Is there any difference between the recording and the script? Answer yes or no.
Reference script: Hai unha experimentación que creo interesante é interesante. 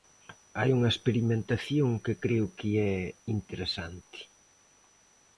yes